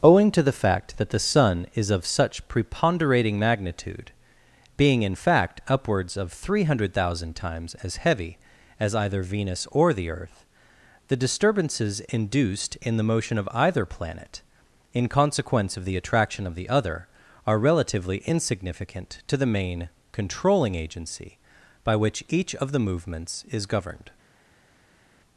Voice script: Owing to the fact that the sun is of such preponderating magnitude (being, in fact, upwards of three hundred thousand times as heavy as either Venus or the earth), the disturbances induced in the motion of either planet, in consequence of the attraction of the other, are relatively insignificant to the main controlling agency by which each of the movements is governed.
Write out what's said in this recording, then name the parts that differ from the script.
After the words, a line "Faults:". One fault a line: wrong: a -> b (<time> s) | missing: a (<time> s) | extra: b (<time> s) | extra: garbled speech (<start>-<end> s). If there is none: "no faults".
Owing to the fact that the sun is of such preponderating magnitude (being, in fact, upwards of three hundred thousand times as heavy as either Venus or the earth), the disturbances induced in the motion of either planet, in consequence of the attraction of the other, are relatively insignificant to the main controlling agency by which each of the movements is governed.
Faults:
no faults